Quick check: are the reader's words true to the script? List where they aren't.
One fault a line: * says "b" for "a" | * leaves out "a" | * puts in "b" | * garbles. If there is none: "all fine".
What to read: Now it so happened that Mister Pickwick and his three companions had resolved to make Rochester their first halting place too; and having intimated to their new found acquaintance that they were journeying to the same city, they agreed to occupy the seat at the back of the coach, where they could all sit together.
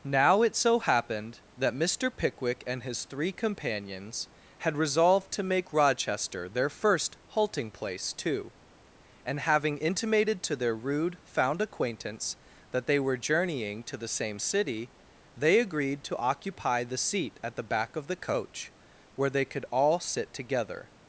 * says "rude" for "new"